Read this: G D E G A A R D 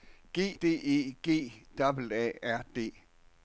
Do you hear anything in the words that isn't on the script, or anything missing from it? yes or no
no